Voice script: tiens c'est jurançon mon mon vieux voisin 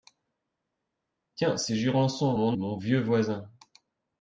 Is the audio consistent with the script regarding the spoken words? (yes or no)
yes